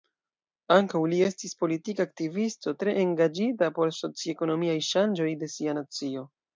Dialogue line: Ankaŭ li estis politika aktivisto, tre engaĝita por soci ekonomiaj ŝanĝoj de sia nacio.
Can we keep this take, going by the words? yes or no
yes